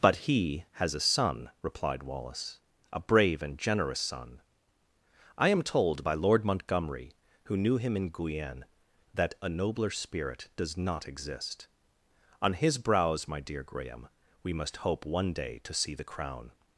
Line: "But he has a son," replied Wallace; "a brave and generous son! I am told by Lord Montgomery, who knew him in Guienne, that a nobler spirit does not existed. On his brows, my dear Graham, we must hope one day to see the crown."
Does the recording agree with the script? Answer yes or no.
no